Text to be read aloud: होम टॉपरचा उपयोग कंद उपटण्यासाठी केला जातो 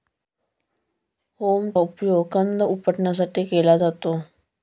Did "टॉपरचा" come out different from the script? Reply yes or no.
yes